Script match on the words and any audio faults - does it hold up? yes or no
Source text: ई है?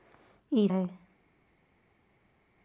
yes